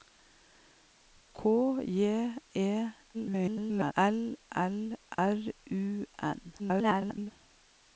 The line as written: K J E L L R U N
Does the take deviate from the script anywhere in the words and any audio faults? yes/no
yes